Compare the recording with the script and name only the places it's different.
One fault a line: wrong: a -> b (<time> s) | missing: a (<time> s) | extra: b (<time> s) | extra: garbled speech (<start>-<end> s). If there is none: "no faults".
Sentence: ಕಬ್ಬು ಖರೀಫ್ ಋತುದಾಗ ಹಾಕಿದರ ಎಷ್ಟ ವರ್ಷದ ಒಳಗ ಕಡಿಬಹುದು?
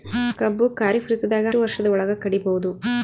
missing: ಹಾಕಿದರ ಎಷ್ಟ (1.5 s)